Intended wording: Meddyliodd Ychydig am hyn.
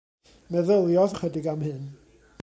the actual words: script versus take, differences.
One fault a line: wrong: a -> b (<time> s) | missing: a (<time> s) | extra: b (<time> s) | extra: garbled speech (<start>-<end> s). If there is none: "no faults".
no faults